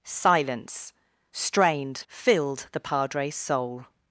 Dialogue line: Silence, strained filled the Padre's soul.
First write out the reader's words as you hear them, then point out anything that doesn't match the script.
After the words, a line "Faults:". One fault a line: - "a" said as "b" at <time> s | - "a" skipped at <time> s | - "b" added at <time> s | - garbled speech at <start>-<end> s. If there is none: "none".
Silence, strained filled the Padre's soul.
Faults:
none